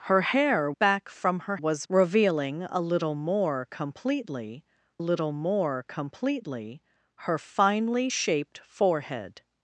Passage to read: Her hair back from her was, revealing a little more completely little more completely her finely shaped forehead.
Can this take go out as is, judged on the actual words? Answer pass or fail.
pass